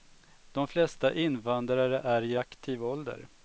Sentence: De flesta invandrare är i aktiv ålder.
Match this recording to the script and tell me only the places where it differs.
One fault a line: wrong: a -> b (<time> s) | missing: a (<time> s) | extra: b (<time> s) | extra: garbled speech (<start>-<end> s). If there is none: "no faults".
no faults